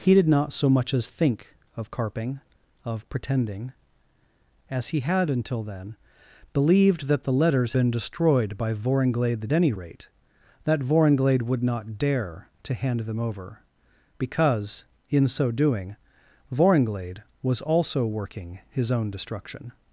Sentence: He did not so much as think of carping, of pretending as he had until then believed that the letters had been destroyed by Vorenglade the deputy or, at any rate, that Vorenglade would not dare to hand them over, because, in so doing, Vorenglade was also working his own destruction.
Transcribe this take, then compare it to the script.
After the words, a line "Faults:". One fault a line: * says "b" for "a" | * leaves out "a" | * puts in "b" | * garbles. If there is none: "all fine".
He did not so much as think of carping, of pretending as he had until then believed that the letters been destroyed by Vorenglade the any rate, that Vorenglade would not dare to hand them over, because, in so doing, Vorenglade was also working his own destruction.
Faults:
* leaves out "had"
* leaves out "deputy or at"